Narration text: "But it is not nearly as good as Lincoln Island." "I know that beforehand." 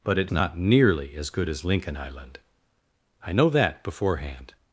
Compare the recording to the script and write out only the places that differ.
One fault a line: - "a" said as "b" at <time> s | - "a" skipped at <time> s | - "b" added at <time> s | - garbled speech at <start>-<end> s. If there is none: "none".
- "is" skipped at 0.3 s